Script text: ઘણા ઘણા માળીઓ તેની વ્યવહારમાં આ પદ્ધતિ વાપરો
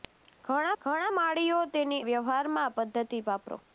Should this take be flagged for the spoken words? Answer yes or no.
no